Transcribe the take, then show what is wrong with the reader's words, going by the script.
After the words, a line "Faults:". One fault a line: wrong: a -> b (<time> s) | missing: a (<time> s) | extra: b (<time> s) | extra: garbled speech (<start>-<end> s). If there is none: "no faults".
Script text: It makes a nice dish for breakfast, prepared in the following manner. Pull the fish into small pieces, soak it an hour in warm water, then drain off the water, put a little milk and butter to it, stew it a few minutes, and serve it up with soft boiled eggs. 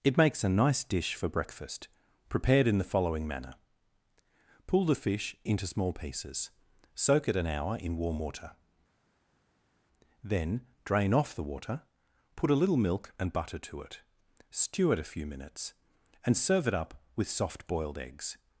It makes a nice dish for breakfast, prepared in the following manner. Pull the fish into small pieces, soak it an hour in warm water, then drain off the water, put a little milk and butter to it, stew it a few minutes, and serve it up with soft boiled eggs.
Faults:
no faults